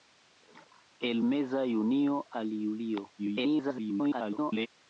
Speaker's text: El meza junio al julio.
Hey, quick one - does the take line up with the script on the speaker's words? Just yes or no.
no